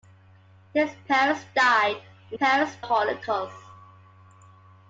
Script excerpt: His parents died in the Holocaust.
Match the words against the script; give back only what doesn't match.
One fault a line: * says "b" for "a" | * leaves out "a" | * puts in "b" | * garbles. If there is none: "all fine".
* says "parents" for "the"